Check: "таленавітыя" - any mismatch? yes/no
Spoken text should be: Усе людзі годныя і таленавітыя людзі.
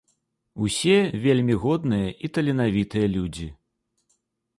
no